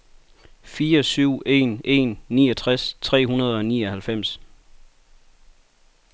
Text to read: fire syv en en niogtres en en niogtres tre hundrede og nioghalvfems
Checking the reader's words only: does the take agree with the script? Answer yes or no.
no